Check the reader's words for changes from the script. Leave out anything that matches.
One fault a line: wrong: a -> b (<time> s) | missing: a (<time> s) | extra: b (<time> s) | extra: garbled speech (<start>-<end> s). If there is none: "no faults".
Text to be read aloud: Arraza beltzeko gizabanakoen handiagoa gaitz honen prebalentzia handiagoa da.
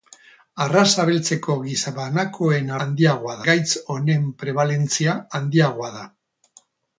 no faults